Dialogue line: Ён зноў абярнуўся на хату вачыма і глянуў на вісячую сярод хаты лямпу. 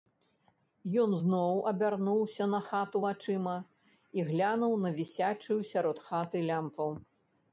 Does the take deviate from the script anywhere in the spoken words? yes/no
no